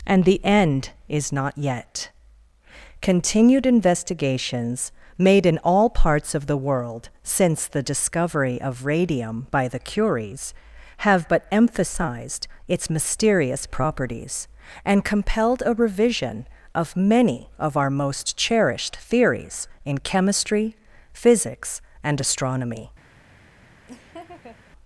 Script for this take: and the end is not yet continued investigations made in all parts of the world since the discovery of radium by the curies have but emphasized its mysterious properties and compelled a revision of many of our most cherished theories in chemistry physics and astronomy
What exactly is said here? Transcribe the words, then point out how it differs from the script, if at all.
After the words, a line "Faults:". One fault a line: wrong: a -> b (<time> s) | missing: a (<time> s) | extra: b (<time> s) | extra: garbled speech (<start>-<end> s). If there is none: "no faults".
and the end is not yet continued investigations made in all parts of the world since the discovery of radium by the curies have but emphasized its mysterious properties and compelled a revision of many of our most cherished theories in chemistry physics and astronomy
Faults:
no faults